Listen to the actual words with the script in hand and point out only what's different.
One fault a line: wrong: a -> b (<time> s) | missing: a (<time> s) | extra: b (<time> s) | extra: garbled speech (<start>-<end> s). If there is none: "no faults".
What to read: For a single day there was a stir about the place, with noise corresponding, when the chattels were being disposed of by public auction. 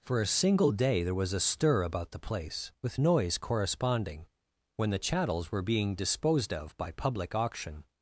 no faults